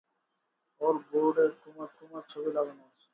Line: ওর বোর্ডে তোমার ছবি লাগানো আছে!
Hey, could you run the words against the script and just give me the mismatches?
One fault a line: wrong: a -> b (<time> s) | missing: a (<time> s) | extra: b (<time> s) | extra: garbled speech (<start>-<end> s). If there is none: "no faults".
extra: তোমার (2.0 s)